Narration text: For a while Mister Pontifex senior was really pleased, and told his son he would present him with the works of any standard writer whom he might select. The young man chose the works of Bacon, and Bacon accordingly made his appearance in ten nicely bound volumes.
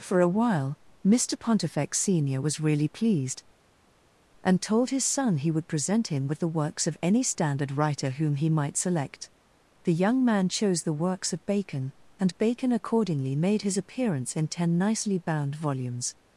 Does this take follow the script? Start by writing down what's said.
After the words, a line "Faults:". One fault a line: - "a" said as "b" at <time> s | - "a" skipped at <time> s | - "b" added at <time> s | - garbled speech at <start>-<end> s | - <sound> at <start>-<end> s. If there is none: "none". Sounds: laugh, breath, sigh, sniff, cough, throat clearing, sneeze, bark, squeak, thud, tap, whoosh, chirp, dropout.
For a while Mister Pontifex senior was really pleased, and told his son he would present him with the works of any standard writer whom he might select. The young man chose the works of Bacon, and Bacon accordingly made his appearance in ten nicely bound volumes.
Faults:
none